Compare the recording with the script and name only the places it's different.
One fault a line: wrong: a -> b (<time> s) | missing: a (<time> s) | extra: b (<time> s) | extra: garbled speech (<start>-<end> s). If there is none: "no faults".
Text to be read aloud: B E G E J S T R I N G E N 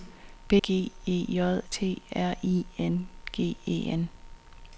missing: E (0.6 s)
missing: S (1.6 s)